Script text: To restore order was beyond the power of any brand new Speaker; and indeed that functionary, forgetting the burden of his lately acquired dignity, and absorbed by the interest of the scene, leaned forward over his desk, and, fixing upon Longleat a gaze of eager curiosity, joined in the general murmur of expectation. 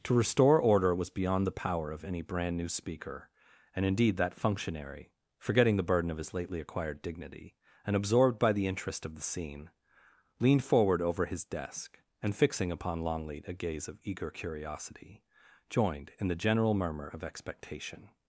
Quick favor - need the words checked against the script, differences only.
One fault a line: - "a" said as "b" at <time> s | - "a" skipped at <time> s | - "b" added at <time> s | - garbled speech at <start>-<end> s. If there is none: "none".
none